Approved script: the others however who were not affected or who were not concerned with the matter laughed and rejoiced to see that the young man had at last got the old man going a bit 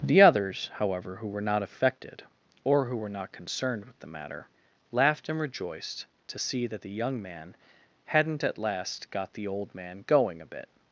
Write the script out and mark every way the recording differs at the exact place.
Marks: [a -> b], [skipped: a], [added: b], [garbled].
the others however who were not affected or who were not concerned with the matter laughed and rejoiced to see that the young man [had -> hadn't] at last got the old man going a bit